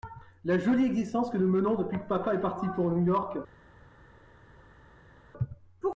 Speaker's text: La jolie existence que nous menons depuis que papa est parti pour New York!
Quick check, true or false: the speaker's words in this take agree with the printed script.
true